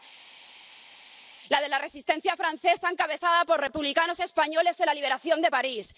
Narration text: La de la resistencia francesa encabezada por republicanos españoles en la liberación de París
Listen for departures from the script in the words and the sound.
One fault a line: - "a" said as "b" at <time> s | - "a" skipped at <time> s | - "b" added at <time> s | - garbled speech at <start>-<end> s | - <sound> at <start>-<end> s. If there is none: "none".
none